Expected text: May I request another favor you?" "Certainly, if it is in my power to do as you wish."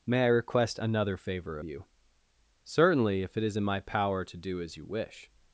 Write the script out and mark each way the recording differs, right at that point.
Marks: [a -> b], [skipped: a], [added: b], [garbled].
May I request another favor you?" "Certainly, if it is in my power to do as you wish."